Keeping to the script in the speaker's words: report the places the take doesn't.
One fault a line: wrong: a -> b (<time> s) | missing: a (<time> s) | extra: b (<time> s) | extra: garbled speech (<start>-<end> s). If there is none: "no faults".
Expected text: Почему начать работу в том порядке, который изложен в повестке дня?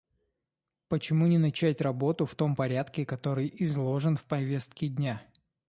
extra: не (1.3 s)